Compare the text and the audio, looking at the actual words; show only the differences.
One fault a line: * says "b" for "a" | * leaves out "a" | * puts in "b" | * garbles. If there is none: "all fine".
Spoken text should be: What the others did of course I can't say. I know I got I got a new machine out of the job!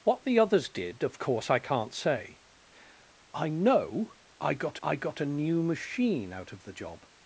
all fine